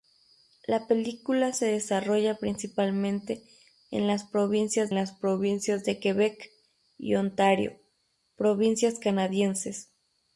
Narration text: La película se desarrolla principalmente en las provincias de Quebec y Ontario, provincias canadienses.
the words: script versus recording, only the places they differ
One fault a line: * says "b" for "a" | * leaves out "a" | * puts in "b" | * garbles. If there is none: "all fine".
* puts in "las provincias"